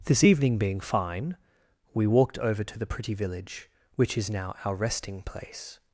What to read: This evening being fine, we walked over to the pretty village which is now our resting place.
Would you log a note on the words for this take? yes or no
no